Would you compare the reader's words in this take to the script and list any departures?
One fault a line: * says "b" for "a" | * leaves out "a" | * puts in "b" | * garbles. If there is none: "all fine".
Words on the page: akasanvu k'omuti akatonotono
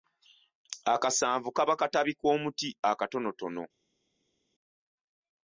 * puts in "kaba katabi"